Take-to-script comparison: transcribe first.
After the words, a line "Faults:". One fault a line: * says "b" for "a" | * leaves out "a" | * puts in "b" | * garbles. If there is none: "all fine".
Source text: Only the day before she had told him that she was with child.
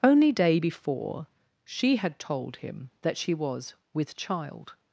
Only day before she had told him that she was with child.
Faults:
* leaves out "the"